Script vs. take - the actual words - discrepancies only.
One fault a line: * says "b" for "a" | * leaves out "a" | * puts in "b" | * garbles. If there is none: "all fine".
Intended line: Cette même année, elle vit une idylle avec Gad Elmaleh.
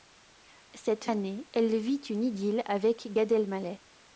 * leaves out "même"